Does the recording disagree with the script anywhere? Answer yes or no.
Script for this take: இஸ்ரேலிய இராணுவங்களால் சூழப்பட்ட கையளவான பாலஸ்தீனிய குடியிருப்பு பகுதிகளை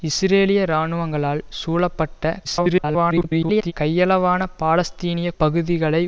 yes